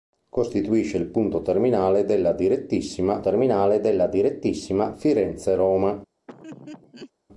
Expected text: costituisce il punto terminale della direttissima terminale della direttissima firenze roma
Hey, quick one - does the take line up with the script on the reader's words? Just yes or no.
yes